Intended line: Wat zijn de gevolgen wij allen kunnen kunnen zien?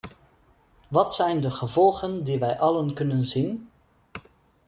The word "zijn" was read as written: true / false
true